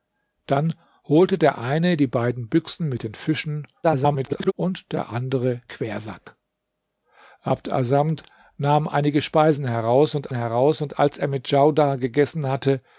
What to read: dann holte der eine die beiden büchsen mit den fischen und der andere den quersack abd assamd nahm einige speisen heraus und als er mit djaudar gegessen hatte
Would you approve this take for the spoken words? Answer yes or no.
no